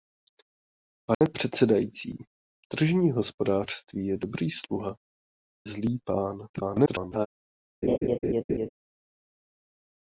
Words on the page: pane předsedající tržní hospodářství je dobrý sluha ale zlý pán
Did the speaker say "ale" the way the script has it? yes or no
no